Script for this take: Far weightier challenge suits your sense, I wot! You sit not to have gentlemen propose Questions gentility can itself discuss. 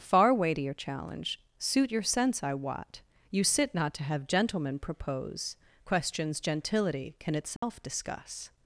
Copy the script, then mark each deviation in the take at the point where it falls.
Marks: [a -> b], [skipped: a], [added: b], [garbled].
Far weightier challenge [suits -> suit] your sense, I wot! You sit not to have gentlemen propose Questions gentility can itself discuss.